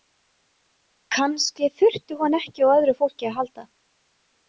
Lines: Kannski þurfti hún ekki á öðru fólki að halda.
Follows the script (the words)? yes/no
yes